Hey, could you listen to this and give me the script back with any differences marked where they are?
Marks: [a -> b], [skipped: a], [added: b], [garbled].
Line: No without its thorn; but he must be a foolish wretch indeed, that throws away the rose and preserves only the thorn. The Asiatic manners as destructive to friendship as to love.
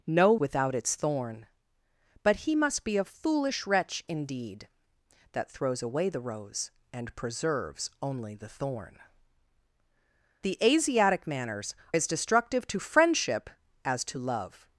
No without its thorn; but he must be a foolish wretch indeed, that throws away the rose and preserves only the thorn. The Asiatic manners as destructive to friendship as to love.